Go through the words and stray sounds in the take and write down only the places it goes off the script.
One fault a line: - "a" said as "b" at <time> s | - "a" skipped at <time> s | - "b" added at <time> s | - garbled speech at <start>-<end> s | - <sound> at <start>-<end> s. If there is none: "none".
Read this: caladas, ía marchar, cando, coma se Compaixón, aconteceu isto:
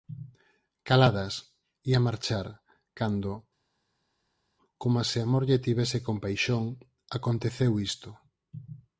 - "Amor lle tivese" added at 5.3 s